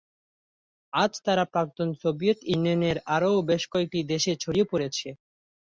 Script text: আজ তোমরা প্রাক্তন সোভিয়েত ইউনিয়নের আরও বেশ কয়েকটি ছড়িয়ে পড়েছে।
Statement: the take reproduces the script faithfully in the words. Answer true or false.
false